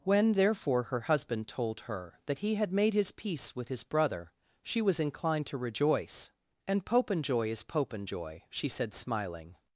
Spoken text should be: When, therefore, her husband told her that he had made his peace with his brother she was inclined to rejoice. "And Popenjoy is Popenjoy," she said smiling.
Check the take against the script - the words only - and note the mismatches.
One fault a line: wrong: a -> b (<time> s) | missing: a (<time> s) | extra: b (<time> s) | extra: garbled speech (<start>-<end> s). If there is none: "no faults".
no faults